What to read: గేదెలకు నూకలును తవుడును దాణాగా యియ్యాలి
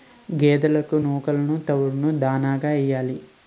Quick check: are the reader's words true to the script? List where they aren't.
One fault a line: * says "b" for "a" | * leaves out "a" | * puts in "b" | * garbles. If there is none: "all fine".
all fine